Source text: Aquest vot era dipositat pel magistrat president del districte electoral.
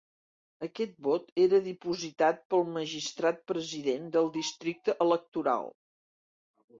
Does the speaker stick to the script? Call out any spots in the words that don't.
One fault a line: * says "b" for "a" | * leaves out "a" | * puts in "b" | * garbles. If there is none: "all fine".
all fine